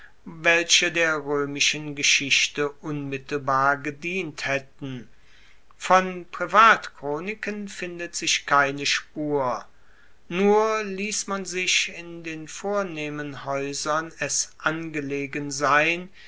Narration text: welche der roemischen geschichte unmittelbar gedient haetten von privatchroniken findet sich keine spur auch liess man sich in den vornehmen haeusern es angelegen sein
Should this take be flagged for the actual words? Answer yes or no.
yes